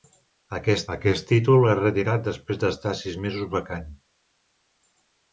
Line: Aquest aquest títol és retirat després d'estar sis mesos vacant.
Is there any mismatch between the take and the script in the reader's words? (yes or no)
no